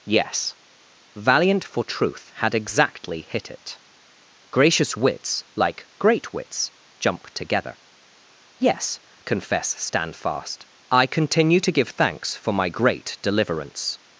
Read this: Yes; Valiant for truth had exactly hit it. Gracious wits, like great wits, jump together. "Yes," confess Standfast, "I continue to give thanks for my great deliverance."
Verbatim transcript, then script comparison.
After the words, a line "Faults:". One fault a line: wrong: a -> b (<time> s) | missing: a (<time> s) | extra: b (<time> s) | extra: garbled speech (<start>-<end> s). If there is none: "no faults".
Yes; Valiant for truth had exactly hit it. Gracious wits, like great wits, jump together. "Yes," confess Standfast, "I continue to give thanks for my great deliverance."
Faults:
no faults